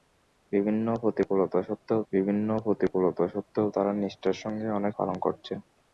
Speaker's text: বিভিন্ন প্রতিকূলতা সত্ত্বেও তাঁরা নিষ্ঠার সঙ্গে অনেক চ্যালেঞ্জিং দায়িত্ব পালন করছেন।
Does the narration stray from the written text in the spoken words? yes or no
yes